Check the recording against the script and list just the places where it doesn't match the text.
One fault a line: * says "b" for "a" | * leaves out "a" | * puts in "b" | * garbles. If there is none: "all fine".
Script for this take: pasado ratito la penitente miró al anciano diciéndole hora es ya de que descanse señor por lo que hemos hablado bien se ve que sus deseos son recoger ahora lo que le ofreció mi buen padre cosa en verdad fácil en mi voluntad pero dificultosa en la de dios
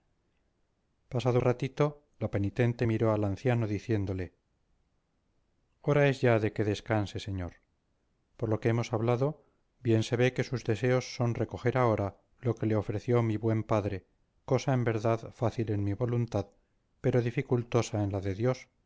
all fine